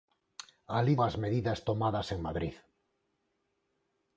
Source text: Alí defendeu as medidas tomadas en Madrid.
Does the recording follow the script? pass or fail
fail